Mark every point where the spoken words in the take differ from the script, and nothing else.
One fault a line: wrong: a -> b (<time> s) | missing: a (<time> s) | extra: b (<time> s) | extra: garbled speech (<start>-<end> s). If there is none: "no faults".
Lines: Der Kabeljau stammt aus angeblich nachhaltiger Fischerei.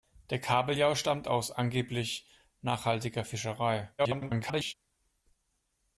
extra: garbled speech (4.0-4.7 s)